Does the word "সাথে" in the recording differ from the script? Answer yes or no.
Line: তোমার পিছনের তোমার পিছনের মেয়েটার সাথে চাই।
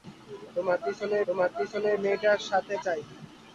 no